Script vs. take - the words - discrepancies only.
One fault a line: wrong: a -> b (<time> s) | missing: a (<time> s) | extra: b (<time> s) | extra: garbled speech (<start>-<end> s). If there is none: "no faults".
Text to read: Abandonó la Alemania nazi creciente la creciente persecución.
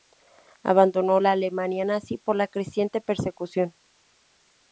wrong: creciente -> por (2.2 s)